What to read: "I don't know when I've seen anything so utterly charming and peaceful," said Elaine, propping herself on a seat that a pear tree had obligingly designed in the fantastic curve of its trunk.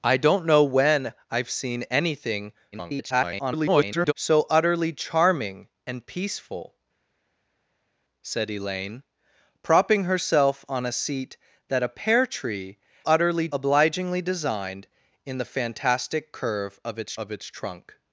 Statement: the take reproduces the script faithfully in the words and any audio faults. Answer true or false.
false